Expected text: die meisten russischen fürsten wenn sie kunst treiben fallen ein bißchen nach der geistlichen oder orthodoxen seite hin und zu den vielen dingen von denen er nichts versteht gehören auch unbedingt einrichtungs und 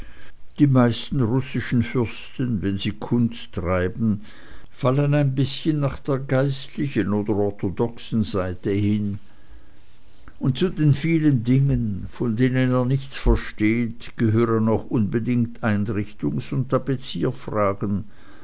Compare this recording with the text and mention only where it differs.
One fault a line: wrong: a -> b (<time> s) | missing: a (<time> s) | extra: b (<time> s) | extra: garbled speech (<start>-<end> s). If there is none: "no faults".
no faults